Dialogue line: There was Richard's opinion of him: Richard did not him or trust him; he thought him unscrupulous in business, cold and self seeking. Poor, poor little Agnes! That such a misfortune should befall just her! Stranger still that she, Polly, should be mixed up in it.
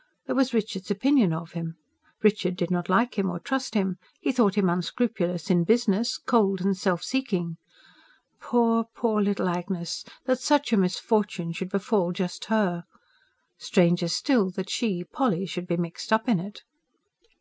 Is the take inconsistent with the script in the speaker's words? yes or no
yes